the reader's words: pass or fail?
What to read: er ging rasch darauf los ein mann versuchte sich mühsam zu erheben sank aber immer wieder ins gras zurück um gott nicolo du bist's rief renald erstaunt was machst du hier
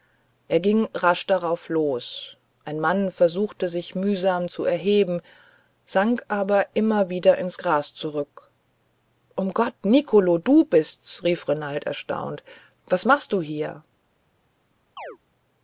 pass